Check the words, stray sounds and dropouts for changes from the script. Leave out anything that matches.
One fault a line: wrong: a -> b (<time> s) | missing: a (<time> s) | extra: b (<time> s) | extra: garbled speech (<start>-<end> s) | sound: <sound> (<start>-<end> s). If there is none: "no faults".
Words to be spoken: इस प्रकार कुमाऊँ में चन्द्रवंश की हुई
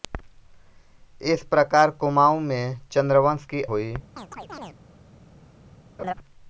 sound: chirp (4.2-4.8 s)
sound: laugh (6.0-6.1 s)